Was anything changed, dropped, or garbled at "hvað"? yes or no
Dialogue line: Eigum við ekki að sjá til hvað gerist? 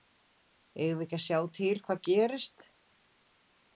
no